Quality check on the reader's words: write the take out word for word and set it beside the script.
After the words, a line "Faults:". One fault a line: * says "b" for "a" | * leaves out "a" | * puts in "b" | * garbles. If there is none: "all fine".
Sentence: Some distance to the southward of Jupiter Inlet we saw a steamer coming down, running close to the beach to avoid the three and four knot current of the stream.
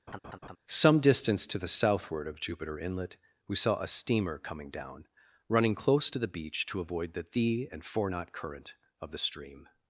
Some distance to the southward of Jupiter Inlet we saw a steamer coming down, running close to the beach to avoid the thee and four knot current of the stream.
Faults:
* says "thee" for "three"